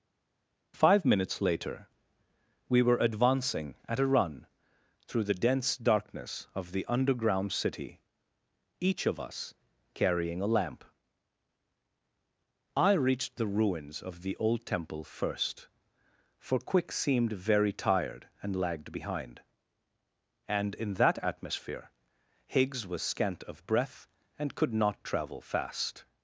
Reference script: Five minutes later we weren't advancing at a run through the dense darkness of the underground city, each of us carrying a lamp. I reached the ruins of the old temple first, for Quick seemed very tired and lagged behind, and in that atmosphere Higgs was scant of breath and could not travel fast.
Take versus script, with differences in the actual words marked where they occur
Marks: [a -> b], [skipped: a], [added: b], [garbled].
Five minutes later we [weren't -> were] advancing at a run through the dense darkness of the underground city, each of us carrying a lamp. I reached the ruins of the old temple first, for Quick seemed very tired and lagged behind, and in that atmosphere Higgs was scant of breath and could not travel fast.